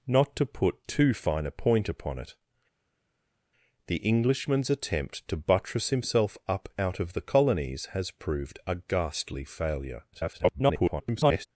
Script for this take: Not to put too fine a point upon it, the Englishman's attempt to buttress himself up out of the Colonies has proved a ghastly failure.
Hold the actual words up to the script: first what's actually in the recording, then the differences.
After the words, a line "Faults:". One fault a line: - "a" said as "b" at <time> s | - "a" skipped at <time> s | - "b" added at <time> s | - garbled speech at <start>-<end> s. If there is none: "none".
Not to put too fine a point upon it, the Englishman's attempt to buttress himself up out of the Colonies has proved a ghastly failure. [garbled]
Faults:
- garbled speech at 10.1-11.5 s